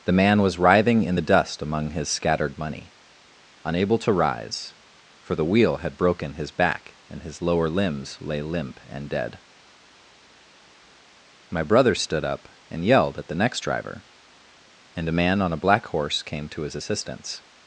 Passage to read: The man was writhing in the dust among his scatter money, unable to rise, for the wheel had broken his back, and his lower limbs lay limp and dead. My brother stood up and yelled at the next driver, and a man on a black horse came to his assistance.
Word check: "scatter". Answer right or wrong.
wrong